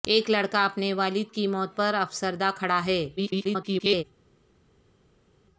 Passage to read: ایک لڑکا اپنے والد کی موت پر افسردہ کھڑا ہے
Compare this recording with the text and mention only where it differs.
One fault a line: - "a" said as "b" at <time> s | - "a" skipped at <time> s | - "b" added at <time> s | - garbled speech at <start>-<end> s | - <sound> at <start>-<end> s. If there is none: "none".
- garbled speech at 3.2-4.0 s